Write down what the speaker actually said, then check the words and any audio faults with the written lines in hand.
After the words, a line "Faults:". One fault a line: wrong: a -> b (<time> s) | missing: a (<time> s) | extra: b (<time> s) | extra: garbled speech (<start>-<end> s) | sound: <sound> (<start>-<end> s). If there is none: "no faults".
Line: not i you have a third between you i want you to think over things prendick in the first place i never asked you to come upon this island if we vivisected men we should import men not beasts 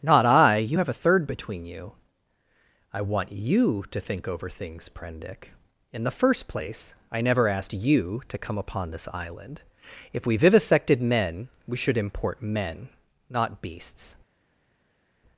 not i you have a third between you i want you to think over things prendick in the first place i never asked you to come upon this island if we vivisected men we should import men not beasts
Faults:
no faults